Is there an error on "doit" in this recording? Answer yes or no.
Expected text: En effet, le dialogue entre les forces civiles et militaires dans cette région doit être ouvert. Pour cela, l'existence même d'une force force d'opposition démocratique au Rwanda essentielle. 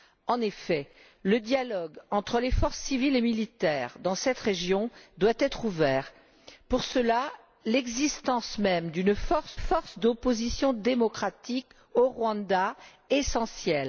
no